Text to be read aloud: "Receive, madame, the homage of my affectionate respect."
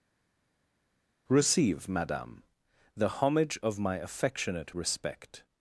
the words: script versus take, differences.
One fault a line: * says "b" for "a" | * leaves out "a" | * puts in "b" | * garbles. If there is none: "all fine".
all fine